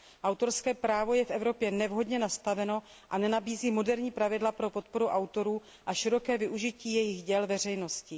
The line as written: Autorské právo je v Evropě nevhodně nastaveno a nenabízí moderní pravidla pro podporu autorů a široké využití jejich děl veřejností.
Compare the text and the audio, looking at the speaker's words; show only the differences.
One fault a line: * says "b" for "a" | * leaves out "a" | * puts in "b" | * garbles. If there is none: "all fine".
all fine